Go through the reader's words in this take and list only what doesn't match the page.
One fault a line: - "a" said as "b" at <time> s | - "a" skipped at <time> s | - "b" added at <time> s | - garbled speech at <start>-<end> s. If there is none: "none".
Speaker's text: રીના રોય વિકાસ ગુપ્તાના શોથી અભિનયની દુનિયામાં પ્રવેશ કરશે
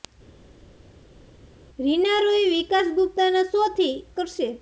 - "અભિનયની દુનિયામાં પ્રવેશ" skipped at 3.9 s